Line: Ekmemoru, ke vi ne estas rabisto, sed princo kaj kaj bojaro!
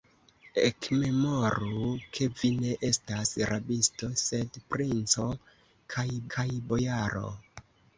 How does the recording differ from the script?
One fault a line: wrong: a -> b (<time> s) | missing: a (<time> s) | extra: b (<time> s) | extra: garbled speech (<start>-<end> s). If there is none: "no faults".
no faults